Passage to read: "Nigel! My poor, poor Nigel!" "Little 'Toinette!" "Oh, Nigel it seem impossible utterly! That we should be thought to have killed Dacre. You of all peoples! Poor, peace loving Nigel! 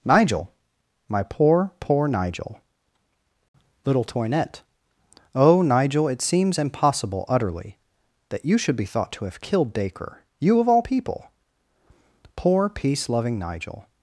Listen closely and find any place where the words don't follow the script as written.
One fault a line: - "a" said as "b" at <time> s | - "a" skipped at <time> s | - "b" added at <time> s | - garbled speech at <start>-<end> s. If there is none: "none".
- "seem" said as "seems" at 6.2 s
- "we" said as "you" at 8.4 s
- "peoples" said as "people" at 10.8 s